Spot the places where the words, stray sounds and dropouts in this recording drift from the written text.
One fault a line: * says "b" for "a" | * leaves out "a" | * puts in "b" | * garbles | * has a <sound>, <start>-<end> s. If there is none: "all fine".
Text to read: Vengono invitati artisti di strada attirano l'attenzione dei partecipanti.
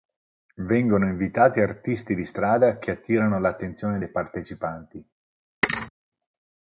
* puts in "che"
* has a thud, 5.6-5.9 s